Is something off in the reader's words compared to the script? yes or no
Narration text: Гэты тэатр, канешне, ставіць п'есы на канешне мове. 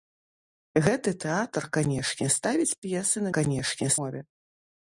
no